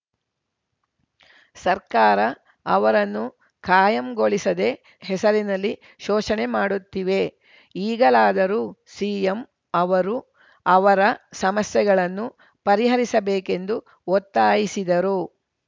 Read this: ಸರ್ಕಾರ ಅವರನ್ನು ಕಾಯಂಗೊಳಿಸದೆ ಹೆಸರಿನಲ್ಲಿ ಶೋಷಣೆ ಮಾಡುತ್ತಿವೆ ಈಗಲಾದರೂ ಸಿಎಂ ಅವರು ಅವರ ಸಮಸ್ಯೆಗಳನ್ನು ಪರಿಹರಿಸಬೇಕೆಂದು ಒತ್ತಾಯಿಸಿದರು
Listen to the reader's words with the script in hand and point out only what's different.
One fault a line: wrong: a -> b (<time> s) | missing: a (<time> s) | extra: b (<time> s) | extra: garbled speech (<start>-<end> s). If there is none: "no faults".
no faults